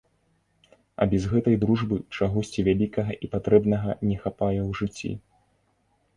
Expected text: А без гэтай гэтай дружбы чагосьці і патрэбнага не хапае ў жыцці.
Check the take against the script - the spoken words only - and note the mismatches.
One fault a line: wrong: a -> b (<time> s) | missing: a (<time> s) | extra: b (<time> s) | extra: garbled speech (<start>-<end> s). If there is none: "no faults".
missing: гэтай (1.6 s)
extra: вялікага (2.7 s)